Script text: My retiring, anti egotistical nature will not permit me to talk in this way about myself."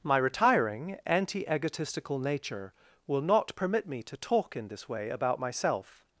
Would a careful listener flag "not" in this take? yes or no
no